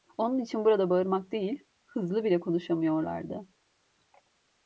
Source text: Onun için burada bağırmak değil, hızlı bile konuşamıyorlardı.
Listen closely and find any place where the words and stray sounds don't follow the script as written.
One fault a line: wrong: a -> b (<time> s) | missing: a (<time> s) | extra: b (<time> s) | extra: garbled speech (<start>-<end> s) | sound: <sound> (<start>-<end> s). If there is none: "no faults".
no faults